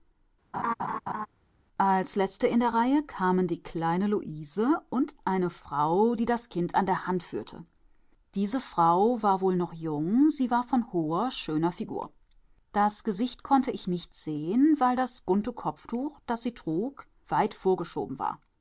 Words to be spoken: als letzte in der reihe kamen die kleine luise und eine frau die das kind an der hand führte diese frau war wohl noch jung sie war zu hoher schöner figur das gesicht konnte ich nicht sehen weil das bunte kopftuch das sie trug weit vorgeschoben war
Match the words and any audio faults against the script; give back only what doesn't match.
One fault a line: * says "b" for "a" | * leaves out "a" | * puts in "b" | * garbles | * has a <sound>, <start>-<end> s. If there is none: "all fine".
* has a laugh, 0.5-1.3 s
* says "von" for "zu"